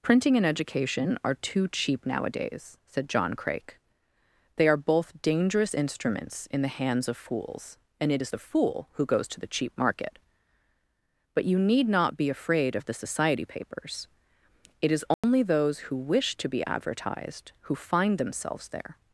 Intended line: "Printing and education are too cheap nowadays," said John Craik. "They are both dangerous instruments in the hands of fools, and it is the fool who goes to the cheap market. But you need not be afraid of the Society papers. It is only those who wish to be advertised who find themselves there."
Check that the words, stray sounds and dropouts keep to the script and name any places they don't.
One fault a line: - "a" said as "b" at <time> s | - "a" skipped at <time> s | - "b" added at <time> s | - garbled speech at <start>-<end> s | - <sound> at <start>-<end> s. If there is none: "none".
- dropout at 15.1-15.2 s